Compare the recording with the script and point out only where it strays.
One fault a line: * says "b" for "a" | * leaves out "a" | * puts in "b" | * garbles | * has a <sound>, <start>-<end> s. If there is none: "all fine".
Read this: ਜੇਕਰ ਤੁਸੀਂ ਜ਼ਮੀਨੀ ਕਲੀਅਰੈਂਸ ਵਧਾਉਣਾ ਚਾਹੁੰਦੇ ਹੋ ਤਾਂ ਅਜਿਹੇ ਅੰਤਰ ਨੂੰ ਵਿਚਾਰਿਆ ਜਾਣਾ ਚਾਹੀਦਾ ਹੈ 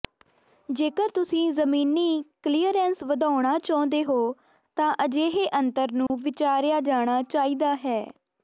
* has a dropout, 6.1-6.1 s